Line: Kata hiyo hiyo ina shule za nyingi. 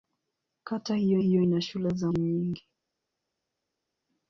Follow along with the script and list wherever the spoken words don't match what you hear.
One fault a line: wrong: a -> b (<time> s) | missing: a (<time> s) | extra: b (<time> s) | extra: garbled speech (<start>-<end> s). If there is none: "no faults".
no faults